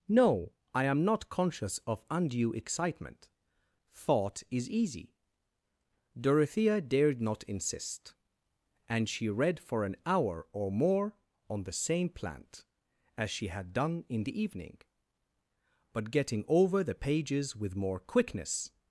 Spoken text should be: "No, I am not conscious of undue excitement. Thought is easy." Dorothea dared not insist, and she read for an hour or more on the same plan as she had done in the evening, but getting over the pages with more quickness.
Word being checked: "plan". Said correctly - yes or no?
no